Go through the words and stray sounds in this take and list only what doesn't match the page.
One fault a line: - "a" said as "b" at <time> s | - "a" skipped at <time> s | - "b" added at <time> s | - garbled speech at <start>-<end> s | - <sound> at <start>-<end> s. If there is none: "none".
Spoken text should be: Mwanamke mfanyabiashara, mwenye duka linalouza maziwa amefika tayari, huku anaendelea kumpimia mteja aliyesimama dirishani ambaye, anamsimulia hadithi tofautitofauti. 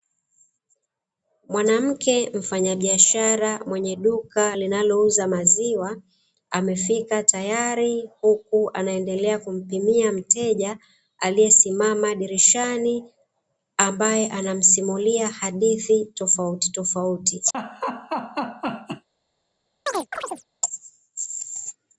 - laugh at 17.5-19.1 s
- chirp at 19.9-20.4 s